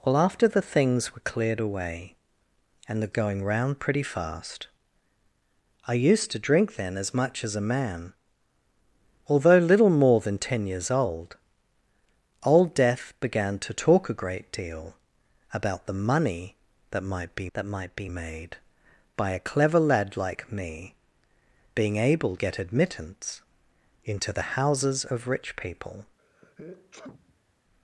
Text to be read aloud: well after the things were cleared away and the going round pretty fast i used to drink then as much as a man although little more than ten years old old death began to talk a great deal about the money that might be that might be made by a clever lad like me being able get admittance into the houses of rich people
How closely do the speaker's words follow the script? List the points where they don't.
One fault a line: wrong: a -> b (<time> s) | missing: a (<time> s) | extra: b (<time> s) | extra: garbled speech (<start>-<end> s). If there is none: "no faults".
no faults